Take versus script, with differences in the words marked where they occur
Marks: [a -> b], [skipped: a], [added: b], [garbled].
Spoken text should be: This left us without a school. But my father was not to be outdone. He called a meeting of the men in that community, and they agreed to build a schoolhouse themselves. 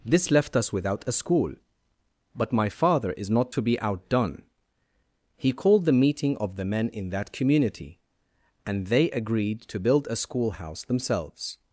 This left us without a school. But my father [was -> is] not to be outdone. He called [a -> the] meeting of the men in that community, and they agreed to build a schoolhouse themselves.